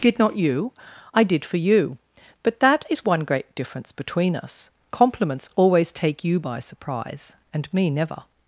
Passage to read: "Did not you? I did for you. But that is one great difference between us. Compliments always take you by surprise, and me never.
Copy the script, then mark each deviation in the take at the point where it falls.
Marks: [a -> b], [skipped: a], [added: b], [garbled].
"Did not you? I did for you. But that is one great difference between us. Compliments always take you by surprise, and me never.